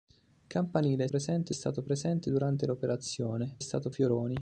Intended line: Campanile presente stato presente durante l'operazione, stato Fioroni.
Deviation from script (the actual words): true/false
false